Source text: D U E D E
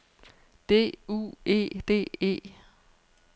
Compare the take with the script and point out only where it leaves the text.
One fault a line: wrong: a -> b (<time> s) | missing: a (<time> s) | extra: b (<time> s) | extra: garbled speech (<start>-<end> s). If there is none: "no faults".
no faults